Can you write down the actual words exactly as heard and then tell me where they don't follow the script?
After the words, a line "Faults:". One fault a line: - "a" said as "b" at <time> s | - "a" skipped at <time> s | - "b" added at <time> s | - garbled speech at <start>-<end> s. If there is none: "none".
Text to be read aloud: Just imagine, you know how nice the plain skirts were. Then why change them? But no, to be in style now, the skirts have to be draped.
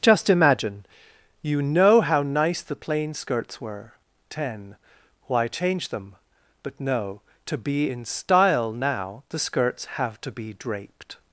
Just imagine, you know how nice the plain skirts were. Ten why change them? But no, to be in style now, the skirts have to be draped.
Faults:
- "Then" said as "Ten" at 4.3 s